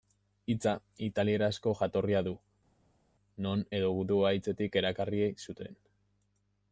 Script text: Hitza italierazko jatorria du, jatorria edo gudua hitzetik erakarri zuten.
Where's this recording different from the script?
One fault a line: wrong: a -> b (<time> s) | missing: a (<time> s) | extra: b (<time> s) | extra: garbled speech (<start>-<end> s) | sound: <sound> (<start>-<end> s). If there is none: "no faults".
wrong: jatorria -> non (3.5 s)